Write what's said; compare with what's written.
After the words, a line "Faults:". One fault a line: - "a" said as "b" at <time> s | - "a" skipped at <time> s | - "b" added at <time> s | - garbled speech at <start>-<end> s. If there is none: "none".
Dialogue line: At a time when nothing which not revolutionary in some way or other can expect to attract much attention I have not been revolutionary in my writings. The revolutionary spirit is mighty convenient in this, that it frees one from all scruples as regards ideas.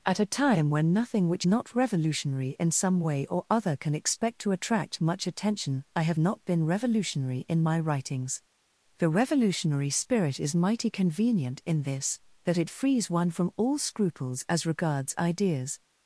At a time when nothing which not revolutionary in some way or other can expect to attract much attention I have not been revolutionary in my writings. The revolutionary spirit is mighty convenient in this, that it frees one from all scruples as regards ideas.
Faults:
none